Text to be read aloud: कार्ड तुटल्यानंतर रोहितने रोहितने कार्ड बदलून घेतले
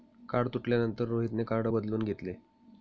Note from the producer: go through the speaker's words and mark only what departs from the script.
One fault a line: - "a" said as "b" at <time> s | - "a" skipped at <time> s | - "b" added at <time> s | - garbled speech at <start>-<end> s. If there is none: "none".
- "रोहितने" skipped at 1.4 s